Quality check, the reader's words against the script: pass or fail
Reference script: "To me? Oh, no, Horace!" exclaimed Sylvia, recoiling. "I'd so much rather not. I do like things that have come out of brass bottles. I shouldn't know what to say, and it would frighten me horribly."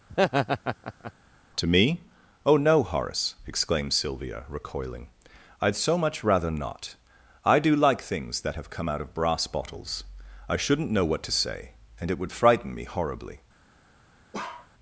pass